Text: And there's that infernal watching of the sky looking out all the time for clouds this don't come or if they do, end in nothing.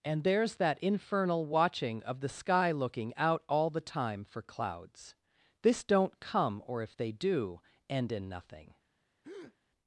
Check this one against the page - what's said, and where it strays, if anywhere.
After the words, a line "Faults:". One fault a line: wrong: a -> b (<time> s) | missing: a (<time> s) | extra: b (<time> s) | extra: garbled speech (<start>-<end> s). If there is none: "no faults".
And there's that infernal watching of the sky looking out all the time for clouds this don't come or if they do, end in nothing.
Faults:
no faults